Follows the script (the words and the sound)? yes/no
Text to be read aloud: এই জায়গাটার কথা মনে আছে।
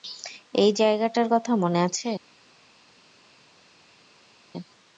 yes